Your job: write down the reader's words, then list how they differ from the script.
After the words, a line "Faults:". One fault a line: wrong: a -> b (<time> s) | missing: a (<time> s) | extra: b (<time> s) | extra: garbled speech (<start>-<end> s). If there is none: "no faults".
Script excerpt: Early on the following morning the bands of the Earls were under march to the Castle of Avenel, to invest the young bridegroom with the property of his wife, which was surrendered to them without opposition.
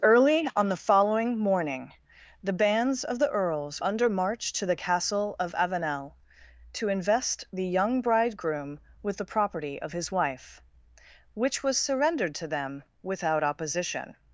Early on the following morning the bands of the Earls under march to the Castle of Avenel, to invest the young bridegroom with the property of his wife, which was surrendered to them without opposition.
Faults:
missing: were (3.8 s)